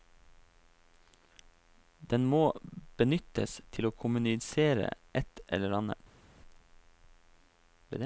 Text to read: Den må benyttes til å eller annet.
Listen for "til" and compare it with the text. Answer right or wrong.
right